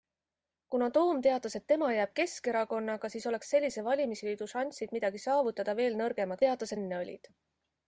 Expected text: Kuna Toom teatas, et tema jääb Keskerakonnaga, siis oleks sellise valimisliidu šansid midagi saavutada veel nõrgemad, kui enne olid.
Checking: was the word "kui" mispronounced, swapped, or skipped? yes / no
yes